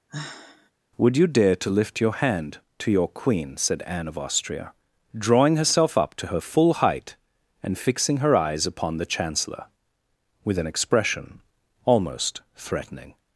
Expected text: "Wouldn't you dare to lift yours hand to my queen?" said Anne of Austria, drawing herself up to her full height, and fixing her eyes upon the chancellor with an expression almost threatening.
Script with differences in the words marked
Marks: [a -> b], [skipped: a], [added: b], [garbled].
["Wouldn't -> Would] you dare to lift [yours -> your] hand to [my -> your] queen?" said Anne of Austria, drawing herself up to her full height, and fixing her eyes upon the chancellor with an expression almost threatening.